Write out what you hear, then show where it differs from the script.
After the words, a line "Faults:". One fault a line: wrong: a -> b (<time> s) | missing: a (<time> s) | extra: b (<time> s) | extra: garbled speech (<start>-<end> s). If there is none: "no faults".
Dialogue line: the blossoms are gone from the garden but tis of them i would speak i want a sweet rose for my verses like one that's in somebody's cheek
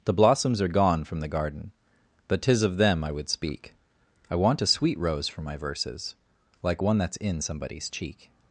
the blossoms are gone from the garden but tis of them i would speak i want a sweet rose for my verses like one that's in somebody's cheek
Faults:
no faults